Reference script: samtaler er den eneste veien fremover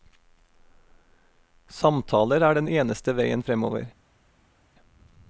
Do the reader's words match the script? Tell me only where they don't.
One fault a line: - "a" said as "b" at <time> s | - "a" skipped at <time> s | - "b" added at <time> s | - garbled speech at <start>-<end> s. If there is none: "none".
none